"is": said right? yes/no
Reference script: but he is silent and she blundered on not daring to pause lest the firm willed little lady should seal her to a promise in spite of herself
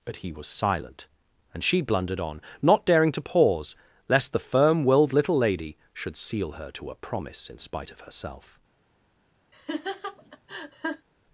no